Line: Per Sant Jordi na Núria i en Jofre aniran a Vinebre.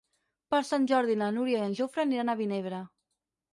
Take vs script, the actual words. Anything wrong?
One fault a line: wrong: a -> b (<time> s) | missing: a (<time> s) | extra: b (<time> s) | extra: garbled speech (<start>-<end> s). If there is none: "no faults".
no faults